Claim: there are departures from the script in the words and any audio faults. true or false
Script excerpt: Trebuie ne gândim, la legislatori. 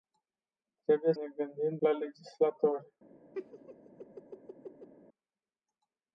true